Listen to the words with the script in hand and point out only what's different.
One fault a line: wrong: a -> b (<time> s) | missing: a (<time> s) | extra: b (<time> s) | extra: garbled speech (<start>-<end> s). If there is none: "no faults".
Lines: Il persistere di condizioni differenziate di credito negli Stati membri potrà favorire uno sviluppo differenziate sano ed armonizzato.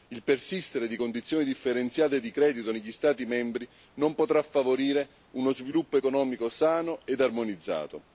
extra: non (3.9 s)
wrong: differenziate -> economico (5.9 s)